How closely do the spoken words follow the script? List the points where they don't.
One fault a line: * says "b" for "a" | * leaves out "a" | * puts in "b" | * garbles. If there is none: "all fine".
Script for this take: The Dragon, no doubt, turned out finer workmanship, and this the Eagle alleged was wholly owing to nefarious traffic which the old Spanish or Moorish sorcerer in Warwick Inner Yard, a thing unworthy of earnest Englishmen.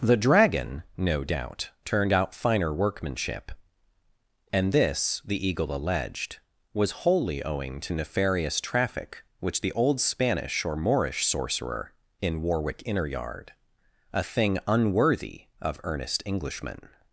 all fine